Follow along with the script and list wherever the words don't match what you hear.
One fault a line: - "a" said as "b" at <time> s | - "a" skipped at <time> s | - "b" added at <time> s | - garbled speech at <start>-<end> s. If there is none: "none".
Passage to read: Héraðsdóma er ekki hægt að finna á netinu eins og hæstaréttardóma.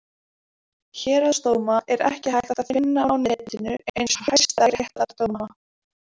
none